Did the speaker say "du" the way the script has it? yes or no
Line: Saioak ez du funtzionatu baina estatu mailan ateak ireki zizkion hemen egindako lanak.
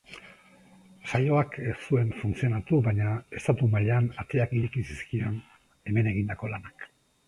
no